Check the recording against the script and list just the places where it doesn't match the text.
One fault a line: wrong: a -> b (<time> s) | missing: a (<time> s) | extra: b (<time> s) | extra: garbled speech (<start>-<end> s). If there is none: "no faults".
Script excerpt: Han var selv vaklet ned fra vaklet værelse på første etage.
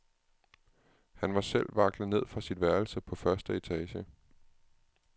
wrong: vaklet -> sit (2.4 s)